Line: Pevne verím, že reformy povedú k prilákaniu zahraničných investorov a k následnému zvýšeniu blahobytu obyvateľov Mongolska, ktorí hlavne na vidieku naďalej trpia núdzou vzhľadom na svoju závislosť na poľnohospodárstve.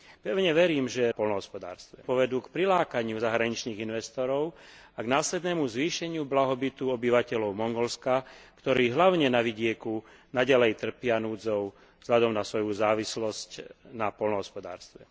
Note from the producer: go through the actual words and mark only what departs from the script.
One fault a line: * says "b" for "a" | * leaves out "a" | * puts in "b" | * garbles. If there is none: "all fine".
* says "poľnohospodárstve" for "reformy"